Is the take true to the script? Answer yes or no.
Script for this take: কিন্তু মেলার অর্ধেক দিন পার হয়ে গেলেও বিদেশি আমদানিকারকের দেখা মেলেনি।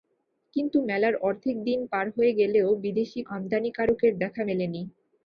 yes